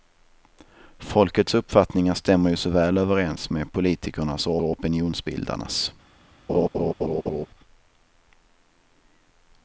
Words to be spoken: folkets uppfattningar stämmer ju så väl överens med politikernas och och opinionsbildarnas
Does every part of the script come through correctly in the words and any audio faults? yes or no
no